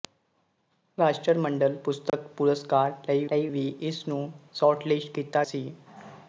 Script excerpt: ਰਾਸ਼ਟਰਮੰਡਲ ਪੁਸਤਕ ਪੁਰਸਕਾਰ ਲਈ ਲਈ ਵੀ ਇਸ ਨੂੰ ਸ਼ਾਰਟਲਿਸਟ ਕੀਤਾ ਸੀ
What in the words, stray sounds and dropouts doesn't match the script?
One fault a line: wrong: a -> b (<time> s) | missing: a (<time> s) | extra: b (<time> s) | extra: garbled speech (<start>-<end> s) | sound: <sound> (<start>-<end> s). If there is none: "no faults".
sound: dropout (2.1-2.1 s)